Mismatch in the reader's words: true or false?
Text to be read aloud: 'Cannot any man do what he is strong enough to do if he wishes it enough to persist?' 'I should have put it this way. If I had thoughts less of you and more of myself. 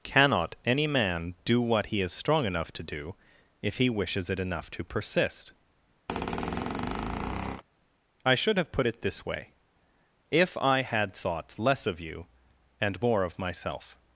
false